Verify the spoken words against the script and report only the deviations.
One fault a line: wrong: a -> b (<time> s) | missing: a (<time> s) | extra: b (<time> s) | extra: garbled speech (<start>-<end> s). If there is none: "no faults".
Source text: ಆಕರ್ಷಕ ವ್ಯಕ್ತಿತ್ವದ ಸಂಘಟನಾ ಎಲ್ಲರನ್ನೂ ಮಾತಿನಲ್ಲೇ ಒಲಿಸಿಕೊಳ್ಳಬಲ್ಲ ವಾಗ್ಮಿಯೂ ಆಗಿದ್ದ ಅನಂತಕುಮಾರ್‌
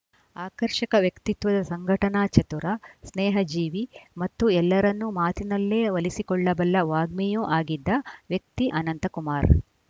extra: ಚತುರ ಸ್ನೇಹಜೀವಿ ಮತ್ತು (2.3 s)
extra: ವ್ಯಕ್ತಿ (8.3 s)